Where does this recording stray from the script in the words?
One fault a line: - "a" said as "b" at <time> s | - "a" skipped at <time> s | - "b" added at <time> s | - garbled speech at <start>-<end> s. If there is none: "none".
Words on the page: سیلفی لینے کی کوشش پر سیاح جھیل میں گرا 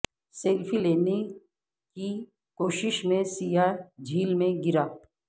- "پر" said as "میں" at 3.0 s